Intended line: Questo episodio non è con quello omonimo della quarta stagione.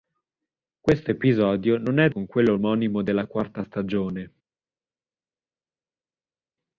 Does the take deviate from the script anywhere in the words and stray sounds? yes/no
no